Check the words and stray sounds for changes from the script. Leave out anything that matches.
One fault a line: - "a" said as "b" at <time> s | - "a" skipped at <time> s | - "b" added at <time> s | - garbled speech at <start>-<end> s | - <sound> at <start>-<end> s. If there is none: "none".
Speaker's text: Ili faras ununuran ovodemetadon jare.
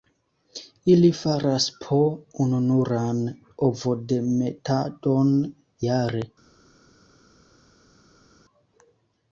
- "po" added at 1.9 s